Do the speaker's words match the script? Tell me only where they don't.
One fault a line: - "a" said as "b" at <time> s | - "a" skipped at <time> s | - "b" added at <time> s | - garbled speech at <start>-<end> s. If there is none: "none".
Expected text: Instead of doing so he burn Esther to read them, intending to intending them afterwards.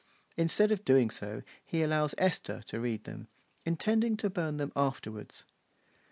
- "burn" said as "allows" at 1.8 s
- "intending" said as "burn" at 4.3 s